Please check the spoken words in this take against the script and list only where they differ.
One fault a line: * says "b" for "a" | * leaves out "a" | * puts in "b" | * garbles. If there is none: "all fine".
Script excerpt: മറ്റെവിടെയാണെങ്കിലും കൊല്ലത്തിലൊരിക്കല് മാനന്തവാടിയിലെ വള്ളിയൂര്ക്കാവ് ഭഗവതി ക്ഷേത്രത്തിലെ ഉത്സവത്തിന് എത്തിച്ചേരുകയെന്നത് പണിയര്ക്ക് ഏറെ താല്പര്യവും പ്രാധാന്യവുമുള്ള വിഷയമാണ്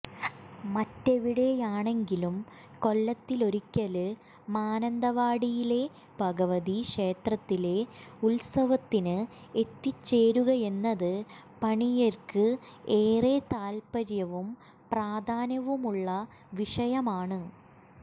* leaves out "വള്ളിയൂര്ക്കാവ്"